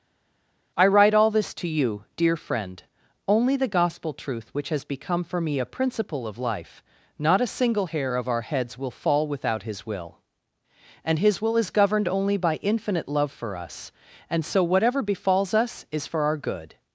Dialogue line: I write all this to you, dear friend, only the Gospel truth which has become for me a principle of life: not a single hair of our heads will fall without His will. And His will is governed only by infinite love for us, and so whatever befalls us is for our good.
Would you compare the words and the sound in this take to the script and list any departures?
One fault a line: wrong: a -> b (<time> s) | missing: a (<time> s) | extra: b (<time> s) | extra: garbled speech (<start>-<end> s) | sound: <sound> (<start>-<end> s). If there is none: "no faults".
no faults